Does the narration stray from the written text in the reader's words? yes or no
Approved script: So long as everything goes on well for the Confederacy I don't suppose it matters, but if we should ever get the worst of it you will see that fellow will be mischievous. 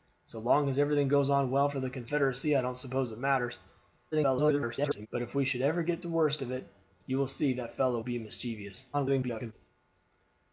yes